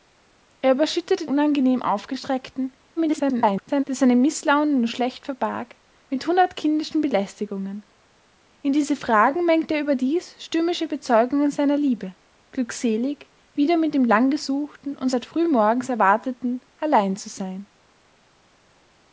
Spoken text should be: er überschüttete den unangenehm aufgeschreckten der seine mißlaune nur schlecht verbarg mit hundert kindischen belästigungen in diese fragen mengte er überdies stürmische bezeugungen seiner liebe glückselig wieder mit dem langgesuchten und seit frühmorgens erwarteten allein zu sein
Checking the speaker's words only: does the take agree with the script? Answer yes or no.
no